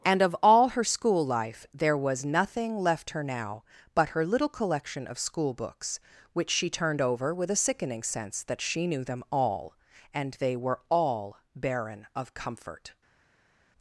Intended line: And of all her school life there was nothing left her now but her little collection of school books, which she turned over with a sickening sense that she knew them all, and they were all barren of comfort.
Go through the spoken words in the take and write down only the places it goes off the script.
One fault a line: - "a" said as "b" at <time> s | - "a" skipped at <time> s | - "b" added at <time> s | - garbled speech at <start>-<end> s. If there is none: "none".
none